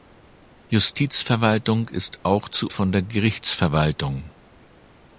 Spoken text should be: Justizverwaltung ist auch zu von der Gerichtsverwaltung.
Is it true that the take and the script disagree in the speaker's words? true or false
false